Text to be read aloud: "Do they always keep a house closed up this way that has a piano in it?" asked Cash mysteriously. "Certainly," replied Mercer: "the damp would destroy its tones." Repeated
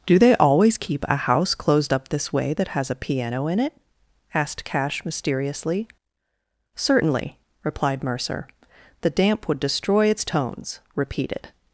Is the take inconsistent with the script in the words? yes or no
no